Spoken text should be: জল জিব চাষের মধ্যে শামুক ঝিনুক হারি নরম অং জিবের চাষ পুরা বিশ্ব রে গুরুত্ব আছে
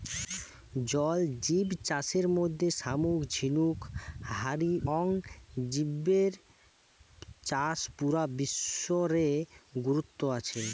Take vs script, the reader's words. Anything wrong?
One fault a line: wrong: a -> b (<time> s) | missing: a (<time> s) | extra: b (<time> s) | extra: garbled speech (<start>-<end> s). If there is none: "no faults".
missing: নরম (4.7 s)